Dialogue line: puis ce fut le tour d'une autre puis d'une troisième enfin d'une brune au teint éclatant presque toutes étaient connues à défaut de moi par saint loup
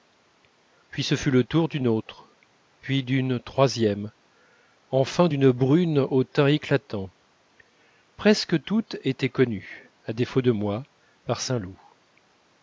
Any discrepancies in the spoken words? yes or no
no